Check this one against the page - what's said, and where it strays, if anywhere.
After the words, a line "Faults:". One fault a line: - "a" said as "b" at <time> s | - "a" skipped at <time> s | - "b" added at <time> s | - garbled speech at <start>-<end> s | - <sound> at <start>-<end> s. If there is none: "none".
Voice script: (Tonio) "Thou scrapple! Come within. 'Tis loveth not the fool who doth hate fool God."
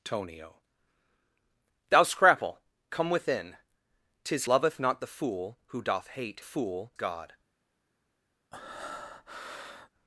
(Tonio) "Thou scrapple! Come within. 'Tis loveth not the fool who doth hate fool God."
Faults:
- breath at 8.5-9.9 s